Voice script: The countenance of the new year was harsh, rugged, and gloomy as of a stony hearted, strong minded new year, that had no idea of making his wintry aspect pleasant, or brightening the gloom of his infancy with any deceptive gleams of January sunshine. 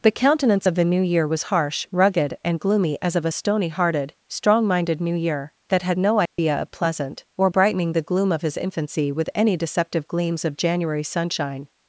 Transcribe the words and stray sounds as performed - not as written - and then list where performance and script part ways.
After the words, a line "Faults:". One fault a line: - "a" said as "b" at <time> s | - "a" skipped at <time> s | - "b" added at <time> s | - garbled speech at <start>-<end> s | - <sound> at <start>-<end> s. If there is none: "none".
The countenance of the new year was harsh, rugged, and gloomy as of a stony hearted, strong minded new year, that had no idea of pleasant, or brightening the gloom of his infancy with any deceptive gleams of January sunshine.
Faults:
- dropout at 6.3-6.4 s
- "making his wintry aspect" skipped at 6.7 s